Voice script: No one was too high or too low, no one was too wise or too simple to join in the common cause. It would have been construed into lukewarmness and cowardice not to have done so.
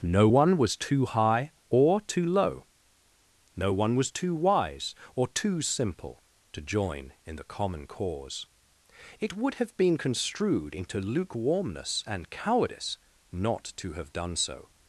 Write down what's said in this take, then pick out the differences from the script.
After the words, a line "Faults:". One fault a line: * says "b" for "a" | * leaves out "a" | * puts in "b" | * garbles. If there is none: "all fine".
No one was too high or too low, no one was too wise or too simple to join in the common cause. It would have been construed into lukewarmness and cowardice not to have done so.
Faults:
all fine